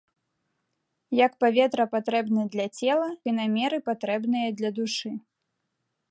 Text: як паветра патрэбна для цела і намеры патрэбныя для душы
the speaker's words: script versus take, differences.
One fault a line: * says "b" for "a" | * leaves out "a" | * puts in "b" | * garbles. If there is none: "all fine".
all fine